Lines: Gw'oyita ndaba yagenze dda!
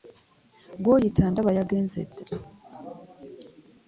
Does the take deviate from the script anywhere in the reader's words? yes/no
no